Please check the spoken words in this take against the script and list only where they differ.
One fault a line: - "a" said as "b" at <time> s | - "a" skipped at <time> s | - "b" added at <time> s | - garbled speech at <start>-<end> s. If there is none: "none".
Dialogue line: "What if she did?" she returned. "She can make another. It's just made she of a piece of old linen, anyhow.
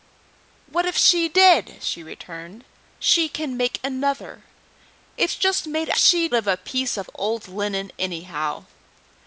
none